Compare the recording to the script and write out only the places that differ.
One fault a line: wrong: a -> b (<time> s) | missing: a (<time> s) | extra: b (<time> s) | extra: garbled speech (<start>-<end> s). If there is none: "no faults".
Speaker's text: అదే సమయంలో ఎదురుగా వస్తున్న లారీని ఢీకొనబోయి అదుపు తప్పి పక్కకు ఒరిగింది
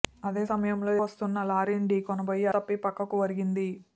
missing: ఎదురుగా (0.9 s)
missing: అదుపు (2.5 s)